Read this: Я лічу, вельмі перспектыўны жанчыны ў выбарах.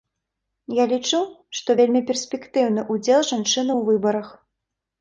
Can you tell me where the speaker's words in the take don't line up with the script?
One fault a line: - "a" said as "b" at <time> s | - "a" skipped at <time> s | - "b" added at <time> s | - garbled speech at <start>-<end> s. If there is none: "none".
- "што" added at 1.6 s
- "ўдзел" added at 3.0 s